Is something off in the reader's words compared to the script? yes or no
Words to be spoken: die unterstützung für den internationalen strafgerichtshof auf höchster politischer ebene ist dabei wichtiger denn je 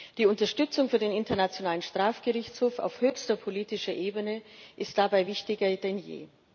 no